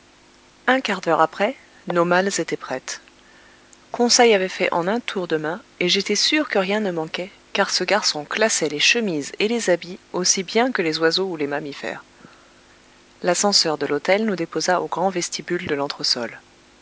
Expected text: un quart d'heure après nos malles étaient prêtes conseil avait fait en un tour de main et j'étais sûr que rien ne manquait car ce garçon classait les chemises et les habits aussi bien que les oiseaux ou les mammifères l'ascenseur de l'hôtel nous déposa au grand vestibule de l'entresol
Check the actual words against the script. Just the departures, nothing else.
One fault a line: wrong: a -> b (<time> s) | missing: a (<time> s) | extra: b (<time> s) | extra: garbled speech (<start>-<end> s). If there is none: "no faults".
no faults